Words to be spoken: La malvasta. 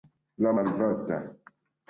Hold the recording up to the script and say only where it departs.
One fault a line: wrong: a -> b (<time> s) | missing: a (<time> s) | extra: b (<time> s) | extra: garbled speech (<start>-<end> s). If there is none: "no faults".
no faults